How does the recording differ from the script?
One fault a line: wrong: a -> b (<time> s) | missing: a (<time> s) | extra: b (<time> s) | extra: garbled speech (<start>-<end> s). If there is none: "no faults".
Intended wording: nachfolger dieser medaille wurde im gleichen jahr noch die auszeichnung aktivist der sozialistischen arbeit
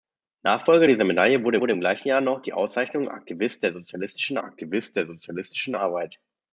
extra: wurde (1.6 s)
extra: aktivist der sozialistischen (4.4 s)